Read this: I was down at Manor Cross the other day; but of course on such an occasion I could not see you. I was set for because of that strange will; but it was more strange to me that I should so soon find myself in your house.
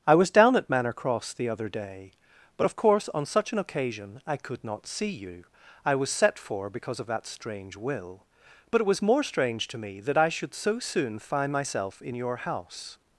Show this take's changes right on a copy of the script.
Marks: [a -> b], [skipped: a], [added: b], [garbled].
I was down at Manor Cross the other day; but of course on such an occasion I could not see you. I was set for because of that strange will; but it was more strange to me that I should so soon find myself in your house.